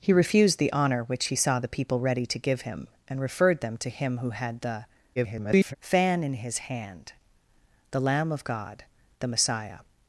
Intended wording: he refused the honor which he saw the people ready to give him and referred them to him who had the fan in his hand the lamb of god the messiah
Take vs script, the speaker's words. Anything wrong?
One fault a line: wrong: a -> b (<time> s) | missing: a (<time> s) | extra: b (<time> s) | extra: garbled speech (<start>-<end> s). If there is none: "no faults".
extra: garbled speech (5.2-5.8 s)